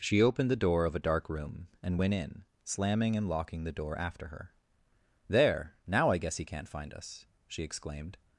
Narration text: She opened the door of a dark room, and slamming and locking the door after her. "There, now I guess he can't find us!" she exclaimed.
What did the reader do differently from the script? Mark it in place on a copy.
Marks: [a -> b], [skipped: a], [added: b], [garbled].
She opened the door of a dark room, and [added: went in] slamming and locking the door after her. "There, now I guess he can't find us!" she exclaimed.